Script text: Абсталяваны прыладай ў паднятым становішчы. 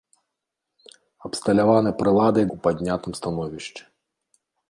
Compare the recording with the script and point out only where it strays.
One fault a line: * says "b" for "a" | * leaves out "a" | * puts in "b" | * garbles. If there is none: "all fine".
all fine